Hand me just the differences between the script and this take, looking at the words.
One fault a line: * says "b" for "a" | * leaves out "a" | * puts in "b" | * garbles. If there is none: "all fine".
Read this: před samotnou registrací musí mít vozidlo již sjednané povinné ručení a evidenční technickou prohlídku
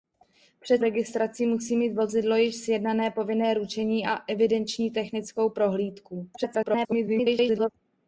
* leaves out "samotnou"
* garbles